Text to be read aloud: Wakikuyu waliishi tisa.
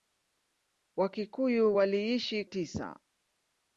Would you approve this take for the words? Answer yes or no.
yes